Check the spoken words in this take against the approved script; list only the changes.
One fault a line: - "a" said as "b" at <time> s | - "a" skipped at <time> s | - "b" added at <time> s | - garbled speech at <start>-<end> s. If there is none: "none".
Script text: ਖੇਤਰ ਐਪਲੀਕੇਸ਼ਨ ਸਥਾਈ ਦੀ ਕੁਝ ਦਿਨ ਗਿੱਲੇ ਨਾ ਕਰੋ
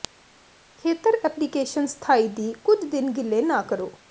none